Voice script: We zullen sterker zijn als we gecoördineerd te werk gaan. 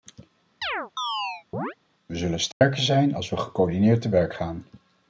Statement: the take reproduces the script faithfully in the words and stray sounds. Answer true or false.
false